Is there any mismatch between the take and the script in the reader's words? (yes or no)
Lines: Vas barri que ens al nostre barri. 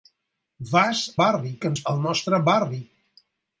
no